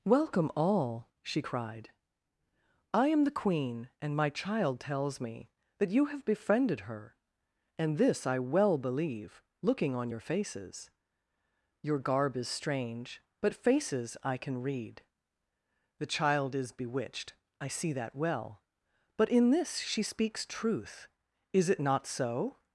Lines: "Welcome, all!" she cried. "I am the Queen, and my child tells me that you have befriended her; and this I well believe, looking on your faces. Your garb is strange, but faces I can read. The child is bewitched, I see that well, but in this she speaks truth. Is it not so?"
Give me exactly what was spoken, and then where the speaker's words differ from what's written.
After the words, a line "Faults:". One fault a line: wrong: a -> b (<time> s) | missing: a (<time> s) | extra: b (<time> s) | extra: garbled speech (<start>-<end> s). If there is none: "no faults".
"Welcome, all!" she cried. "I am the Queen, and my child tells me that you have befriended her; and this I well believe, looking on your faces. Your garb is strange, but faces I can read. The child is bewitched, I see that well, but in this she speaks truth. Is it not so?"
Faults:
no faults